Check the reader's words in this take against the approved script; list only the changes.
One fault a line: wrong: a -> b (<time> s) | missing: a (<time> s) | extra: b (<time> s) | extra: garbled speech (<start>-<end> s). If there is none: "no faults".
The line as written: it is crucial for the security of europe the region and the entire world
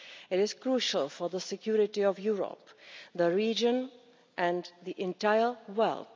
no faults